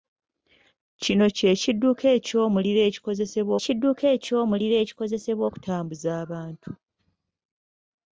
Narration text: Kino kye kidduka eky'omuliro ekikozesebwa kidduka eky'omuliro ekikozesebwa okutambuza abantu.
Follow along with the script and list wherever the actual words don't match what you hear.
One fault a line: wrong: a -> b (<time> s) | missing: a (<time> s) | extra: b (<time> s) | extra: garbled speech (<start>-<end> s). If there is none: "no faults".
no faults